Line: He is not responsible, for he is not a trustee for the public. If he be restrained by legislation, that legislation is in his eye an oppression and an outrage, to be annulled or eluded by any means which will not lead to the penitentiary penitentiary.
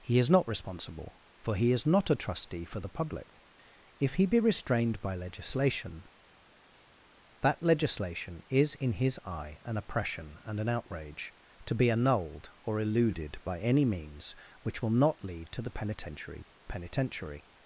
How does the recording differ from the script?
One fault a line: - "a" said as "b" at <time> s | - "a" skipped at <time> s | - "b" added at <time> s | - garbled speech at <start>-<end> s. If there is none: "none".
none